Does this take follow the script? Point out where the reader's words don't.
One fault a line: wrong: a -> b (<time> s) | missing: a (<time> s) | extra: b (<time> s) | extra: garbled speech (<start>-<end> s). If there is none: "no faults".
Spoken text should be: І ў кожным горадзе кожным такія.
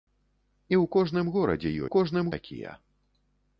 no faults